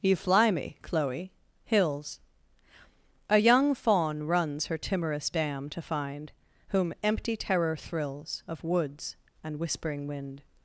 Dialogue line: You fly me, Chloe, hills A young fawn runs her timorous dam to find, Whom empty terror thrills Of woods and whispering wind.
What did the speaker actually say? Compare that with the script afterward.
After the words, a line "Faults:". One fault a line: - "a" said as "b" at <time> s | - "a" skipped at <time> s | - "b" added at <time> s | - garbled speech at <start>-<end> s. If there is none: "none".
You fly me, Chloe, hills A young fawn runs her timorous dam to find, Whom empty terror thrills Of woods and whispering wind.
Faults:
none